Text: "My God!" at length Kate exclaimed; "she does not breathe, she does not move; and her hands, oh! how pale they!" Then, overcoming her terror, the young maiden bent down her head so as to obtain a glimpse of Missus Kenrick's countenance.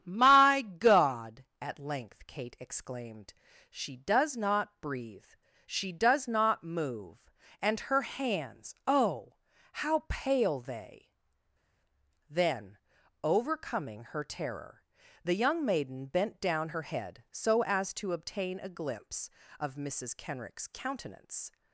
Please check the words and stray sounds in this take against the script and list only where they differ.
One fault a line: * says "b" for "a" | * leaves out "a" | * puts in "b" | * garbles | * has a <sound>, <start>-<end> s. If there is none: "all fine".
all fine